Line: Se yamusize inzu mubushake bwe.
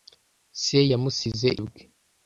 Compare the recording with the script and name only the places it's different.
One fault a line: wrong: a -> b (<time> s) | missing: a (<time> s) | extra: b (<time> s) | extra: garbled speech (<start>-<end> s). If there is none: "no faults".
missing: inzu mubushake (1.5 s)